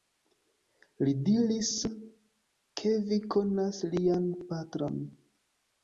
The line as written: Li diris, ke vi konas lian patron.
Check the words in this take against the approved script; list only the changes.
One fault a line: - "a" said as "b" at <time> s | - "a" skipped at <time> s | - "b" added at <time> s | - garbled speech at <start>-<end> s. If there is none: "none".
none